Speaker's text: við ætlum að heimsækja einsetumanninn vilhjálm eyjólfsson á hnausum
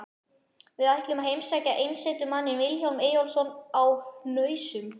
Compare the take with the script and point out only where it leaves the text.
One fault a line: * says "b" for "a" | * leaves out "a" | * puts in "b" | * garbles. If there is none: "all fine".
all fine